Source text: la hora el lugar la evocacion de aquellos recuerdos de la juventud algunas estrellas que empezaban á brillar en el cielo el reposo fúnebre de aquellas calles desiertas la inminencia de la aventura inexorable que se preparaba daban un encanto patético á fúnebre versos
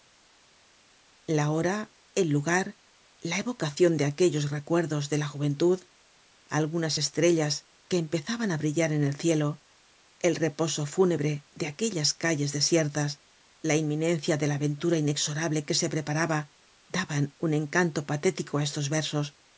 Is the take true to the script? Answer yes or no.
no